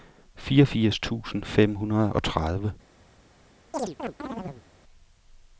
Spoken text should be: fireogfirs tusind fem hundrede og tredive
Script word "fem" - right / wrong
right